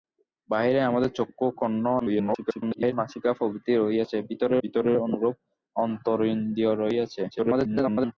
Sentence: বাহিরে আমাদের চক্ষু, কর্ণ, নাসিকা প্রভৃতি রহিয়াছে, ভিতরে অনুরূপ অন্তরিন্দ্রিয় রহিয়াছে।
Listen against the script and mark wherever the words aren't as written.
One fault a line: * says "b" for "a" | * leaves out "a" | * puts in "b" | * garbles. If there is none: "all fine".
* garbles
* puts in "ভিতরে"
* garbles